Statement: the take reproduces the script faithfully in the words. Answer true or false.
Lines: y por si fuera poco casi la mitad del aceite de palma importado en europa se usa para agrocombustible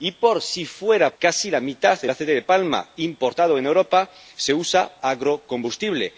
false